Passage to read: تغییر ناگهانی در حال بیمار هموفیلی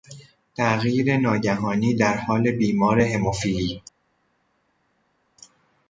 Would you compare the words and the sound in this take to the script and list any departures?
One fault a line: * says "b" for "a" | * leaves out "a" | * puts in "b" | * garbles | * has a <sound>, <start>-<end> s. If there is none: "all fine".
all fine